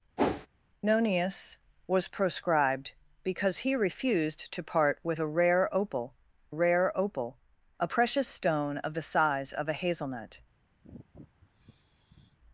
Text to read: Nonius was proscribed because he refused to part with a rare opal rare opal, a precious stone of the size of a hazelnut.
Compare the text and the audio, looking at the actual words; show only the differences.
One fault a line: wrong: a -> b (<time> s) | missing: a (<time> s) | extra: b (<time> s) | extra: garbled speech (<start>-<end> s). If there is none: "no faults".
no faults